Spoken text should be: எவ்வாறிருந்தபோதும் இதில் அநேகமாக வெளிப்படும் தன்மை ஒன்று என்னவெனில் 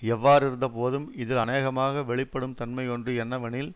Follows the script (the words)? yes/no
yes